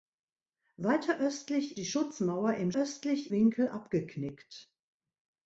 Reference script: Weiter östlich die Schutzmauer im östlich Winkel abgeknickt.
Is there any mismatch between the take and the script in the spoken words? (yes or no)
no